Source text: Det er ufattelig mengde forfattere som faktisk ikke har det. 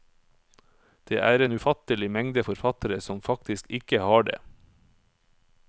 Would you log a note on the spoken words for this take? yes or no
yes